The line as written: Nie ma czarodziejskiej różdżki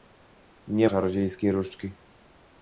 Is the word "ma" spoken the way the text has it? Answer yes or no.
no